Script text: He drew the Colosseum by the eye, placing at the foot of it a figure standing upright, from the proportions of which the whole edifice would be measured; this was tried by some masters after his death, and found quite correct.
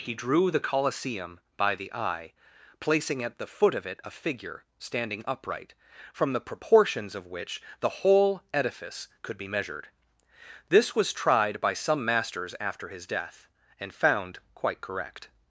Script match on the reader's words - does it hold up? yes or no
no